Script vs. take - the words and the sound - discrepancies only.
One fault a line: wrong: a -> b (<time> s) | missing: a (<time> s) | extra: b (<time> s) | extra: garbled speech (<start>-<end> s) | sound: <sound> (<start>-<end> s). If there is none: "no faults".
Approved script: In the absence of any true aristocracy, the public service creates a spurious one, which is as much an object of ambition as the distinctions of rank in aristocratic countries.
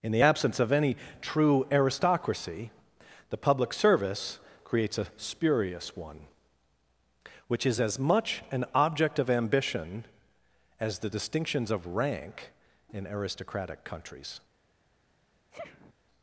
sound: sniff (15.5-15.9 s)